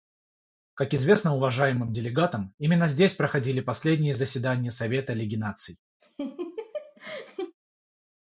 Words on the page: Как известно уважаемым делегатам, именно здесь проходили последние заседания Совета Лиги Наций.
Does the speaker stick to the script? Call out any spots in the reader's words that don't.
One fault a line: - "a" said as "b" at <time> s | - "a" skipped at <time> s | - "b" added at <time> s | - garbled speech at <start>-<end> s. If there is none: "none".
none